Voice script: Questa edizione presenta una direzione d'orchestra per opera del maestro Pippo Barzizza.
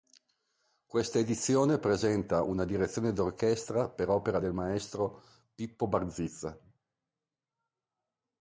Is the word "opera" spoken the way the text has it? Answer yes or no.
yes